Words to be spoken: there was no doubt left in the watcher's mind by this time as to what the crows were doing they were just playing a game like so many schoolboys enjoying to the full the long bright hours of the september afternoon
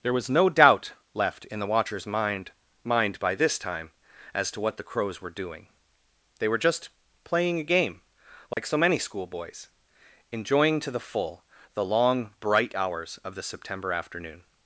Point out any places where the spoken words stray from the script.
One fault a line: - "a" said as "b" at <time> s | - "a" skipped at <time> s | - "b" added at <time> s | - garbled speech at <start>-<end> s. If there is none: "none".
- "mind" added at 2.8 s